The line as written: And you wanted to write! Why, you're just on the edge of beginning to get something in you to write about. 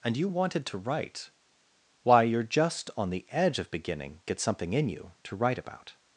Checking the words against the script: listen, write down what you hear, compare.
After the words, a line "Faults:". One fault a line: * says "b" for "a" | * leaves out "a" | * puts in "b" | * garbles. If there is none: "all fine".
And you wanted to write! Why, you're just on the edge of beginning get something in you to write about.
Faults:
* leaves out "to"